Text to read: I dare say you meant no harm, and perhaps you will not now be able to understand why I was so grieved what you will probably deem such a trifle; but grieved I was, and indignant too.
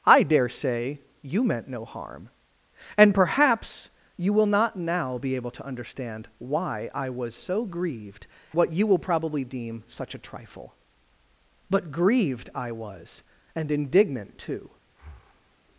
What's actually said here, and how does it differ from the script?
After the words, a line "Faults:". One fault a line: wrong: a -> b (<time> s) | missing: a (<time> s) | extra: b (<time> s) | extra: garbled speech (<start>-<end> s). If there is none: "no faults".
I dare say you meant no harm, and perhaps you will not now be able to understand why I was so grieved what you will probably deem such a trifle; but grieved I was, and indignant too.
Faults:
no faults